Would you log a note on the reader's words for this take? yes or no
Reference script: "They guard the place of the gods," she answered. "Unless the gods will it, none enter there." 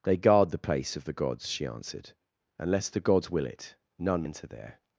no